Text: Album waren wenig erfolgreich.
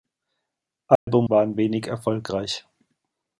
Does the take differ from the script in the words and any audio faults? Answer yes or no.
yes